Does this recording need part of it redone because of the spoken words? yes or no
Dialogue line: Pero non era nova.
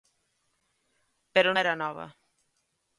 yes